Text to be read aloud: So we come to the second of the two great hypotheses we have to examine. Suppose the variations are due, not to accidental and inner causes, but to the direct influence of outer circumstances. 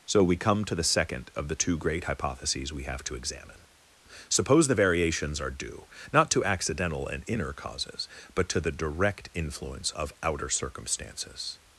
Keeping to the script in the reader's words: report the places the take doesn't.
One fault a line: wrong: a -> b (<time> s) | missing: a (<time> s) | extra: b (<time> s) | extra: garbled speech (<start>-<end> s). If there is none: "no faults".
no faults